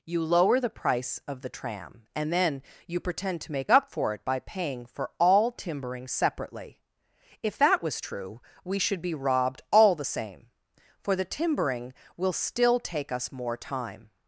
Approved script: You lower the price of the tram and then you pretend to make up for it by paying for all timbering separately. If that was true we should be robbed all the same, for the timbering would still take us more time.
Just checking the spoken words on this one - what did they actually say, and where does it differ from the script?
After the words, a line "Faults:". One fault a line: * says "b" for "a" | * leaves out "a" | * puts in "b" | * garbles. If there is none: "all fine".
You lower the price of the tram and then you pretend to make up for it by paying for all timbering separately. If that was true we should be robbed all the same, for the timbering will still take us more time.
Faults:
* says "will" for "would"